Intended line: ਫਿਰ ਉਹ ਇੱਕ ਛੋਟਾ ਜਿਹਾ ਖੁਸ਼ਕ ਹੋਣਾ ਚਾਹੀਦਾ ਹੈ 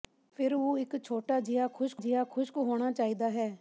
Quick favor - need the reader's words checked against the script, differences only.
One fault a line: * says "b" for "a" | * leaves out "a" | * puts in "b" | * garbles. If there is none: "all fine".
* puts in "ਜਿਹਾ ਖੁਸ਼ਕ"